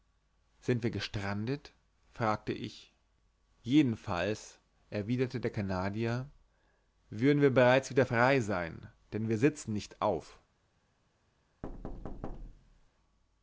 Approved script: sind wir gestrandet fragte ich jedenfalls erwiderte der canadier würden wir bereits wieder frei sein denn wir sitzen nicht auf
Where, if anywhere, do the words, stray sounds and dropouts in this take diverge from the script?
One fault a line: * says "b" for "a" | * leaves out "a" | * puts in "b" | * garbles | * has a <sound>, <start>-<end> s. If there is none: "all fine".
* has a thud, 11.6-12.9 s